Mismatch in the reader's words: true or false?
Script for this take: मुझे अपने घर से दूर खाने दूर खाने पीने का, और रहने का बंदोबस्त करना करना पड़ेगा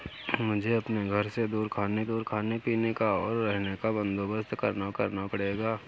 false